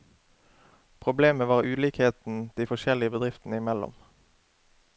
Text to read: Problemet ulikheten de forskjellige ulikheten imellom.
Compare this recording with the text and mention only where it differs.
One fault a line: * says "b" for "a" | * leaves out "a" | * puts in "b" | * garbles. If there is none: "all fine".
* puts in "var"
* says "bedriftene" for "ulikheten"